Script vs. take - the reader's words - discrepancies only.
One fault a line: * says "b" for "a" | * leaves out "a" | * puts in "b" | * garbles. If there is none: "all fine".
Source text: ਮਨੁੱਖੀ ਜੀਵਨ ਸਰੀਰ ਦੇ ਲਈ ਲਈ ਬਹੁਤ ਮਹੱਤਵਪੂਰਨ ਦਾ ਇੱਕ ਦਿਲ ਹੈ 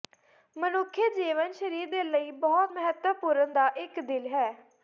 * leaves out "ਲਈ"